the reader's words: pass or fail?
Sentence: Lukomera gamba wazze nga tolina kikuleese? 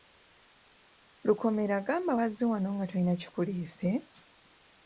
fail